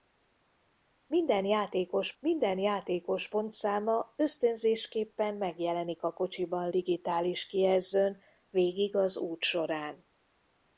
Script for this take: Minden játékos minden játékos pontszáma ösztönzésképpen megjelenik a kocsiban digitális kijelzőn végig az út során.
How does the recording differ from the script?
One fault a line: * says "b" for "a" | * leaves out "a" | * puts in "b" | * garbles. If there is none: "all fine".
all fine